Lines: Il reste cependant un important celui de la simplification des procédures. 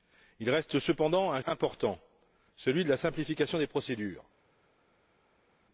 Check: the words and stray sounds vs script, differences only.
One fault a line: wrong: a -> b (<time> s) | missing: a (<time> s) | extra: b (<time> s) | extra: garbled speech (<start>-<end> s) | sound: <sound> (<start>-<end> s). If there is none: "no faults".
no faults